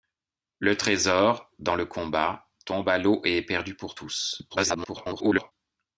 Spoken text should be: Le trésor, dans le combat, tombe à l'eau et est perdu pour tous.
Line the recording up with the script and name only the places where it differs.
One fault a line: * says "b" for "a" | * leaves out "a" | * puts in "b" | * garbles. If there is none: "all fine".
* garbles